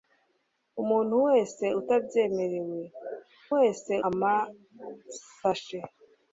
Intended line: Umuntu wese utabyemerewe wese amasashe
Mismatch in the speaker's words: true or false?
false